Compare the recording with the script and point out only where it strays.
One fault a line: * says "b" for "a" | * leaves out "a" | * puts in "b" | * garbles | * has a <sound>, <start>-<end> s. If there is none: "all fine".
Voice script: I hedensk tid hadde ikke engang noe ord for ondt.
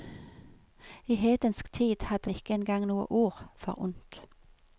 all fine